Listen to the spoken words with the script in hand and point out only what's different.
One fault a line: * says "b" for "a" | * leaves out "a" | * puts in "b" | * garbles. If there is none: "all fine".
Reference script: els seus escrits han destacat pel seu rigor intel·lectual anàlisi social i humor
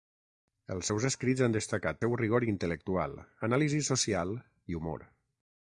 * leaves out "pel"